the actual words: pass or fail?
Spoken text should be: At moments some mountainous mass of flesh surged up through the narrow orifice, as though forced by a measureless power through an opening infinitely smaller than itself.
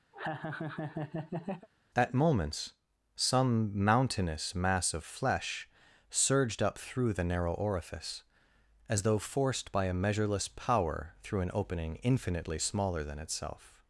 pass